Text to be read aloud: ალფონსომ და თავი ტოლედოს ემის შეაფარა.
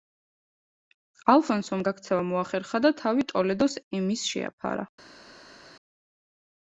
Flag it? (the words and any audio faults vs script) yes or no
yes